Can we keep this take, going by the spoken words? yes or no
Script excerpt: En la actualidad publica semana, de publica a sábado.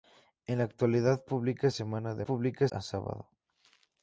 yes